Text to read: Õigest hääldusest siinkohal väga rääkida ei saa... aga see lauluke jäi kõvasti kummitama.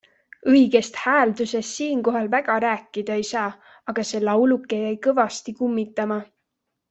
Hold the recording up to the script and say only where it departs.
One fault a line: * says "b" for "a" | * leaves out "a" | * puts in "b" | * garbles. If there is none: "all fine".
all fine